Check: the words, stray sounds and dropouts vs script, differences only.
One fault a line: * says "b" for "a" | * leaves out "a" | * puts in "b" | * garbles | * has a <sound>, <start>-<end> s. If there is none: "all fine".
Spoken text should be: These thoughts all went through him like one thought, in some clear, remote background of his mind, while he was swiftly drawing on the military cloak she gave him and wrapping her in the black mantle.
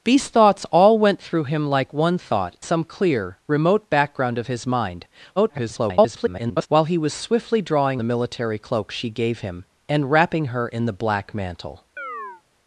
* leaves out "in"
* garbles
* leaves out "on"
* has a chirp, 12.0-12.4 s